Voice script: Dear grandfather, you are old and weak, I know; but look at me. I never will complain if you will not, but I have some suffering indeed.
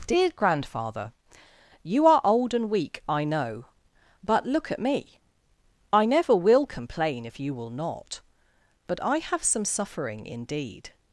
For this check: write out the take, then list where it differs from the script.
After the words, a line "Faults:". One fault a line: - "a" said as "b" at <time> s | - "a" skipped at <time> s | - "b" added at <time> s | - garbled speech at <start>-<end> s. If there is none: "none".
Dear grandfather, you are old and weak, I know; but look at me. I never will complain if you will not, but I have some suffering indeed.
Faults:
none